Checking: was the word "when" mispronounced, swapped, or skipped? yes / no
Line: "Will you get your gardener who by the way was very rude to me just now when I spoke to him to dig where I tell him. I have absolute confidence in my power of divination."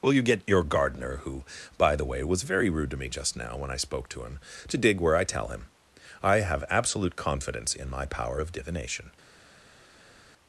no